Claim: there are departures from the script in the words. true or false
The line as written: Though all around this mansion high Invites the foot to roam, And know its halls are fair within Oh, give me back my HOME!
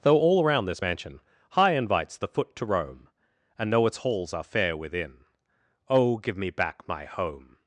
false